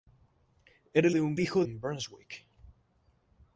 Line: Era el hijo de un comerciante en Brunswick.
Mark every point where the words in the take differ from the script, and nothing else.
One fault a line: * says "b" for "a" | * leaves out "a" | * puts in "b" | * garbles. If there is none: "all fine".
* leaves out "hijo"
* says "hijo" for "comerciante"